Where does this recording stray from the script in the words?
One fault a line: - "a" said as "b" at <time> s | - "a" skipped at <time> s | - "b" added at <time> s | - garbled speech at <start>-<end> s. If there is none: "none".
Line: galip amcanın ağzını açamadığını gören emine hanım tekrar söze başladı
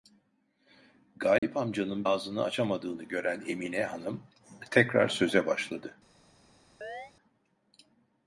none